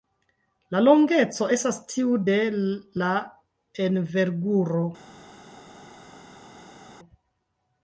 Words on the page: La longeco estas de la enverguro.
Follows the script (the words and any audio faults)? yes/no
no